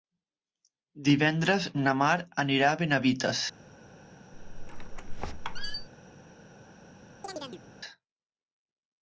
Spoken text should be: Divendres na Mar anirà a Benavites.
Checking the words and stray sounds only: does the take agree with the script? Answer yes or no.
no